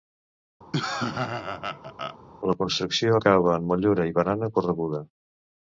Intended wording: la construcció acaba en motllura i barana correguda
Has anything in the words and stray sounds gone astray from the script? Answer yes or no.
yes